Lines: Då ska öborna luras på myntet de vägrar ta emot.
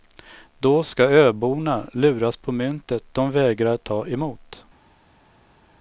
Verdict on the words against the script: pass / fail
pass